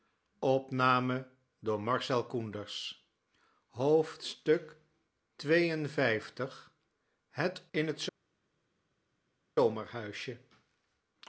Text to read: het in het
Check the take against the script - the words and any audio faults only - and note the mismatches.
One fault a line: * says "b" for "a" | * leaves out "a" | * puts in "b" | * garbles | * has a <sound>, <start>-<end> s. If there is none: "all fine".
all fine